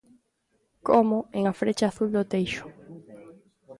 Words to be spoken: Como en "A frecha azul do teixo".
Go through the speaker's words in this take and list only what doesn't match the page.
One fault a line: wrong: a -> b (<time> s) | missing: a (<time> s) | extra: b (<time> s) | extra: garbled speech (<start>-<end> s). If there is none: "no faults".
no faults